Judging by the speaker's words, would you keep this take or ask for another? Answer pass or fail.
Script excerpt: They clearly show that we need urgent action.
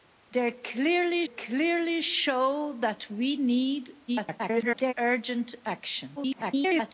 fail